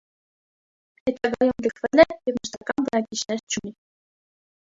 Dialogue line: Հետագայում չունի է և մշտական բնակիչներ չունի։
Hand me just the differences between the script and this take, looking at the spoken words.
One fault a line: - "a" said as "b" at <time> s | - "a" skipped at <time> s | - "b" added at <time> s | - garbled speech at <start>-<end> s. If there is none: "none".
- "չունի" said as "լքվել" at 1.6 s